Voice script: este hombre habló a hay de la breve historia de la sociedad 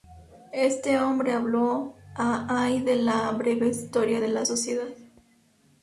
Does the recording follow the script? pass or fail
pass